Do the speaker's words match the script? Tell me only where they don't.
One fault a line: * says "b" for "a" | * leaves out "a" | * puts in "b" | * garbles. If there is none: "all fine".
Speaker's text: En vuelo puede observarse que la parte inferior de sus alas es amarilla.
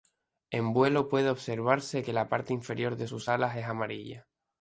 all fine